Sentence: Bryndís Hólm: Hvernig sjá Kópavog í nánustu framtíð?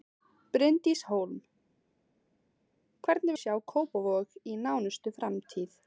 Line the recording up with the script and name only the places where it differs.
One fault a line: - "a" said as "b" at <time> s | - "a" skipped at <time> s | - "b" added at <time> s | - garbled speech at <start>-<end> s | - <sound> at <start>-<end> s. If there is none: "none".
none